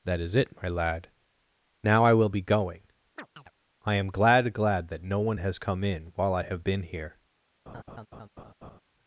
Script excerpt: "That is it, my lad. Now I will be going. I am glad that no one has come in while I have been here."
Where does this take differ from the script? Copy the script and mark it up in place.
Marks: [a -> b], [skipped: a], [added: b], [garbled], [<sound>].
"That is it, my lad. Now I will be going. [chirp] I am glad [added: glad] that no one has come in while I have been here." [laugh]